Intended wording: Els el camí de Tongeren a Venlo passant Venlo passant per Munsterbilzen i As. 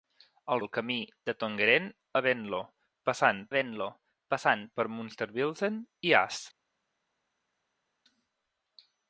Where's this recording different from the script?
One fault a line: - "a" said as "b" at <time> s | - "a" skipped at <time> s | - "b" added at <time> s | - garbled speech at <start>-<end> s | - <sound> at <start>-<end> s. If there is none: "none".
none